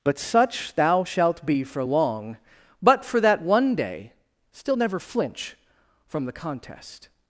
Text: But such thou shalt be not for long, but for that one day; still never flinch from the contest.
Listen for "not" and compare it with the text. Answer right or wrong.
wrong